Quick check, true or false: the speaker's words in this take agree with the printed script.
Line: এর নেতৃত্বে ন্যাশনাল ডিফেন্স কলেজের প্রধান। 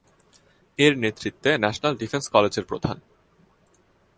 true